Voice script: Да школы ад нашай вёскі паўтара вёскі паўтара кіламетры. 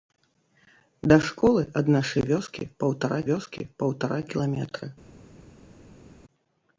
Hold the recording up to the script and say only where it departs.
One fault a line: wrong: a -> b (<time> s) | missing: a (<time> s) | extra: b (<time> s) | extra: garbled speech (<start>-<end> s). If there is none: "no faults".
no faults